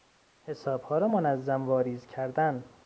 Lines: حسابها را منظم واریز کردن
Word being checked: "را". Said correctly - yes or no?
yes